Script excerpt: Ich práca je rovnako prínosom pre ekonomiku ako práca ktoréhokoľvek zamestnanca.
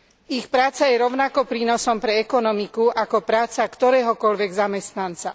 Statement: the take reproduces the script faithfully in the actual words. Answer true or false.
true